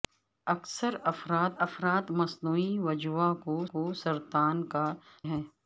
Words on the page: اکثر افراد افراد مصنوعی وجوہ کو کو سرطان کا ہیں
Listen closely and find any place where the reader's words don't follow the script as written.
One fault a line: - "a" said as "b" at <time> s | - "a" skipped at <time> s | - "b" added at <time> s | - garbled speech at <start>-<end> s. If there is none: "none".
none